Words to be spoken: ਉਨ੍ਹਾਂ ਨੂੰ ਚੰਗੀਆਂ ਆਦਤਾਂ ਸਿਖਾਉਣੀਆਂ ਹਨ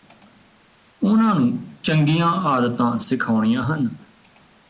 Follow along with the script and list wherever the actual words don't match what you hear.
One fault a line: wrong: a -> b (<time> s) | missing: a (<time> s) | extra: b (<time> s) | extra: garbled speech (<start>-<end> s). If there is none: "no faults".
no faults